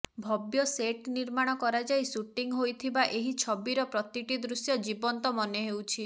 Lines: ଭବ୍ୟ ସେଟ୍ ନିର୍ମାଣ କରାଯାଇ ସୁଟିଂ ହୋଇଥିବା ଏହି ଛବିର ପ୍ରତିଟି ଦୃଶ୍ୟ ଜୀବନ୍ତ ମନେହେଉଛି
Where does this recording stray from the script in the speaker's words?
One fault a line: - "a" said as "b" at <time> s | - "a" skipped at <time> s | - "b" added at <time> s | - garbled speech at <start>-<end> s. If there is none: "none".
none